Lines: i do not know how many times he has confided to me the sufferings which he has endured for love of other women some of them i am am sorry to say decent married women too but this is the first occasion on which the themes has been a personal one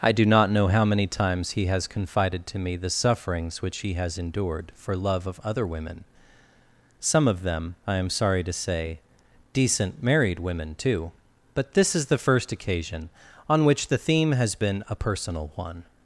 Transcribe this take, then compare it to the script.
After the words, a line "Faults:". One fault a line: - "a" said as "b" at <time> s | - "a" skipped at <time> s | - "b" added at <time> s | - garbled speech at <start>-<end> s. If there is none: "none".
i do not know how many times he has confided to me the sufferings which he has endured for love of other women some of them i am sorry to say decent married women too but this is the first occasion on which the theme has been a personal one
Faults:
- "am" skipped at 8.1 s
- "themes" said as "theme" at 14.0 s